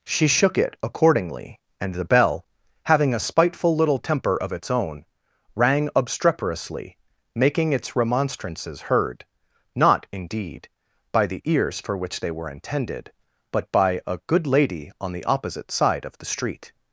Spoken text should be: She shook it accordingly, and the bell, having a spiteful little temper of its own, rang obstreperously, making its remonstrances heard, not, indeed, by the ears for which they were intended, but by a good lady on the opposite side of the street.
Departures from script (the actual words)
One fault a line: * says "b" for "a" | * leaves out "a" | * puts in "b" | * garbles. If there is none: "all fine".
all fine